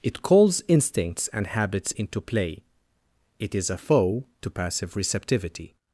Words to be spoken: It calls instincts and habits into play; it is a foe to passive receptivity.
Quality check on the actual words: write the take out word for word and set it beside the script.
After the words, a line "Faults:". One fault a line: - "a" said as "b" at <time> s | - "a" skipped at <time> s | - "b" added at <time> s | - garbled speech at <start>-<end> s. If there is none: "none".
It calls instincts and habits into play; it is a foe to passive receptivity.
Faults:
none